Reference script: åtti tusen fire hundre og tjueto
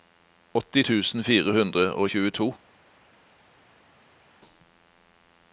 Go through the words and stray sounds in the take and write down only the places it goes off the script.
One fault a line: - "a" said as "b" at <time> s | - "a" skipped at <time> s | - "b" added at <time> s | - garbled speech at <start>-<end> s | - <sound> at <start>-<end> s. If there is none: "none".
none